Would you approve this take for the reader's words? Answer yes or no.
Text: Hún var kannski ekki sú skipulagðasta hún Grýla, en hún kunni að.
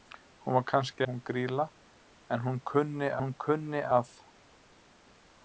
no